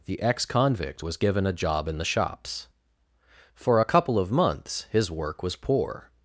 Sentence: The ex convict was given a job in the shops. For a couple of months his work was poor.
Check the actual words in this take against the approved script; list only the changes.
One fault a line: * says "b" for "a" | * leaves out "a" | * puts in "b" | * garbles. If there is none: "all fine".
all fine